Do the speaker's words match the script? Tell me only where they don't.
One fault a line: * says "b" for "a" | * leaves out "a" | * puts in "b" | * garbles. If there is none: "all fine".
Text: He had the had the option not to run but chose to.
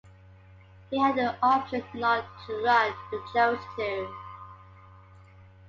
* leaves out "had the"